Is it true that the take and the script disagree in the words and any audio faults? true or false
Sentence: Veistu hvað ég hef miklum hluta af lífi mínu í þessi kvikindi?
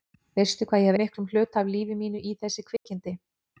true